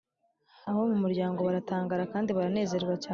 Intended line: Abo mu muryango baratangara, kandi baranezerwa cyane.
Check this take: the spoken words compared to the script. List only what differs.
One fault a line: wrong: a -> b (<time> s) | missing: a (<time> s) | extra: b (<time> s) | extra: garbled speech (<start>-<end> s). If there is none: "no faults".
no faults